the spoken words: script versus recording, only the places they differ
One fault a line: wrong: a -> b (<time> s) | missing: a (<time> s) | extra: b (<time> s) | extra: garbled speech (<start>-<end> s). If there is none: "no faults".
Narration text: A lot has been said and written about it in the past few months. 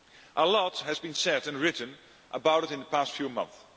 no faults